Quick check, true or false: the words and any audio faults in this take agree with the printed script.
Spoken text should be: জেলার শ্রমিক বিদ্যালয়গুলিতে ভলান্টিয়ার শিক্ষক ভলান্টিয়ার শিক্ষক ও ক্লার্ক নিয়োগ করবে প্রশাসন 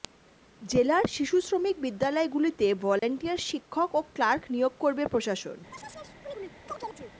false